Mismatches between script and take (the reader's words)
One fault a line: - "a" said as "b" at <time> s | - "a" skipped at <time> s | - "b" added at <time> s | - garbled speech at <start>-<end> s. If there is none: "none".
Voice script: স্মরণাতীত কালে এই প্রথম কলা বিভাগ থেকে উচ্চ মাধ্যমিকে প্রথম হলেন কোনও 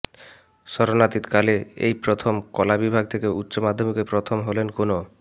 none